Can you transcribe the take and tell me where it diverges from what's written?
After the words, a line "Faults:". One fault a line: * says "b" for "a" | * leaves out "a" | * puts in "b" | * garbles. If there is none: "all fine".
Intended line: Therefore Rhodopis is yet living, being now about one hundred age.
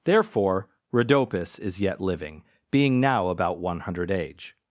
Therefore Rhodopis is yet living, being now about one hundred age.
Faults:
all fine